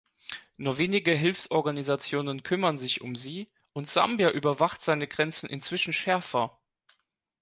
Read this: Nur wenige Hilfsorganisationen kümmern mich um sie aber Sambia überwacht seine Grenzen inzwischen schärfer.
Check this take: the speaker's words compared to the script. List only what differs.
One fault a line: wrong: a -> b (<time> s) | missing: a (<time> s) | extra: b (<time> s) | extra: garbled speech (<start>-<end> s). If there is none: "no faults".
wrong: mich -> sich (2.8 s)
wrong: aber -> und (3.7 s)